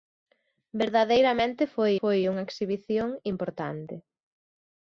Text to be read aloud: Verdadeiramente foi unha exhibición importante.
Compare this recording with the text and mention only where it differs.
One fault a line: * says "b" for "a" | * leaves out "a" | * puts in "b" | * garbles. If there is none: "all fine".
* puts in "foi"